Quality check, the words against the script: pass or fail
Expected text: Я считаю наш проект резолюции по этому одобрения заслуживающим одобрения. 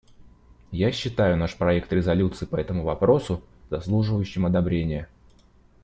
fail